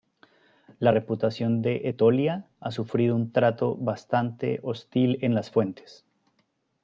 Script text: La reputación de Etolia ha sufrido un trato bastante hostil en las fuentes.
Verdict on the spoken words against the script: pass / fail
pass